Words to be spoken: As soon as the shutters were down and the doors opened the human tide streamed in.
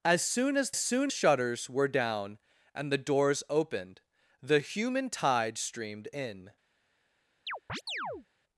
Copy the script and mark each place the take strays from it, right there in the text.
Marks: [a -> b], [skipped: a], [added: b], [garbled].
As soon as [the -> soon] shutters were down and the doors opened the human tide streamed in.